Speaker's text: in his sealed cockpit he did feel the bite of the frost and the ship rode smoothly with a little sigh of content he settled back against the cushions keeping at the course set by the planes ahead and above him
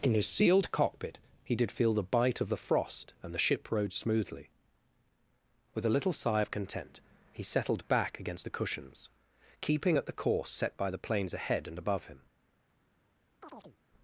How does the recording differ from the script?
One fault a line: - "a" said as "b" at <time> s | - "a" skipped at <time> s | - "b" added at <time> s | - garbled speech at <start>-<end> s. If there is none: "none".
none